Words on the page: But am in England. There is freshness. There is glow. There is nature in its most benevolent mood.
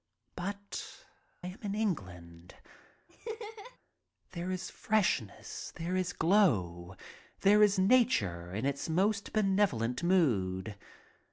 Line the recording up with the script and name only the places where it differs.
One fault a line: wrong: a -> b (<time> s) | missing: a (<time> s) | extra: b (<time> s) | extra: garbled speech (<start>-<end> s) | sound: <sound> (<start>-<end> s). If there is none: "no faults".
sound: laugh (3.1-3.8 s)